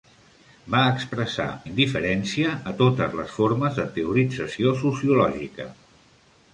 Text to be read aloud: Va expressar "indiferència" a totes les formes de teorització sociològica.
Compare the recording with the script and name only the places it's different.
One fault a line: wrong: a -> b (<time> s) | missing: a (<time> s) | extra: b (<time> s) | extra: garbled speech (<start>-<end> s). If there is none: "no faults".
no faults